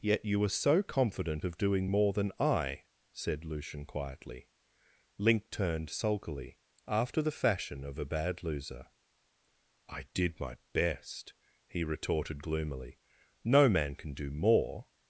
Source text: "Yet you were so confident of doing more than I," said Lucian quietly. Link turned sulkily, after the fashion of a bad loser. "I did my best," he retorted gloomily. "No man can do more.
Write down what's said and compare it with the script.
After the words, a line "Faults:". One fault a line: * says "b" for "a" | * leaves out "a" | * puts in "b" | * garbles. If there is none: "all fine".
"Yet you were so confident of doing more than I," said Lucian quietly. Link turned sulkily, after the fashion of a bad loser. "I did my best," he retorted gloomily. "No man can do more.
Faults:
all fine